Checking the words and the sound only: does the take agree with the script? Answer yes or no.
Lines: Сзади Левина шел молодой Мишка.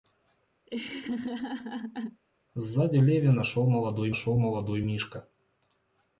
no